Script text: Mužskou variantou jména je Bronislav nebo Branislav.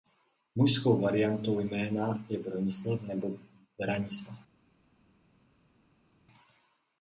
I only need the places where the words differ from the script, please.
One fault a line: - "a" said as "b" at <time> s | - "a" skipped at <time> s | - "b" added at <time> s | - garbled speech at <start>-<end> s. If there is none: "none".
none